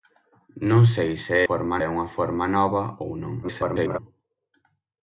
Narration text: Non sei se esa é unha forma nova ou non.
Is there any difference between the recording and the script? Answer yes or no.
yes